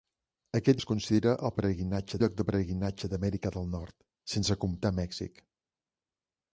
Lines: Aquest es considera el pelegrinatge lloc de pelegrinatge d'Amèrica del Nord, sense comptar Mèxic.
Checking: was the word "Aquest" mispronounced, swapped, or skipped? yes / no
no